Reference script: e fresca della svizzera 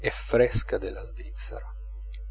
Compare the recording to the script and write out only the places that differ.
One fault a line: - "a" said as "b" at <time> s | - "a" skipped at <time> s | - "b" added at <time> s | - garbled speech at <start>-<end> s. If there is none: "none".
none